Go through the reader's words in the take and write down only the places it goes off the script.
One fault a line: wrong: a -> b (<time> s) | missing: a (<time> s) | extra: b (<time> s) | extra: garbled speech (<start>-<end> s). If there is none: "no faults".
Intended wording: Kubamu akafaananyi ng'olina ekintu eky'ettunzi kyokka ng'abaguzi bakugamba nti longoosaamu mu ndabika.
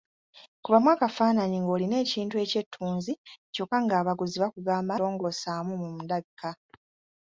missing: nti (4.9 s)